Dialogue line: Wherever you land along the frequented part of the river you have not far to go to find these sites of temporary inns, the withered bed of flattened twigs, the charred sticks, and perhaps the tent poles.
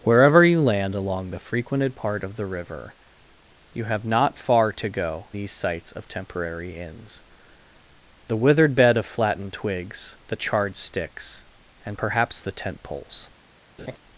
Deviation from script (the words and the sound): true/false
true